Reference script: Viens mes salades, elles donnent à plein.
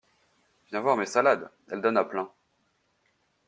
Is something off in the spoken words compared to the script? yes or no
yes